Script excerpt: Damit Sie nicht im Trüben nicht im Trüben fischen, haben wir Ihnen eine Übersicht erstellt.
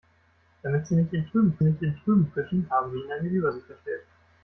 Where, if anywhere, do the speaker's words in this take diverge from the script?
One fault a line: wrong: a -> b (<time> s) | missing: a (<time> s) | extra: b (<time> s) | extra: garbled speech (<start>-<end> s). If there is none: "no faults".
no faults